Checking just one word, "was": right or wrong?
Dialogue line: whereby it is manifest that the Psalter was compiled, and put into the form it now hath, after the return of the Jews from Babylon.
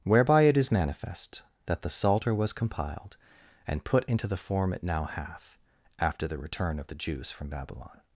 right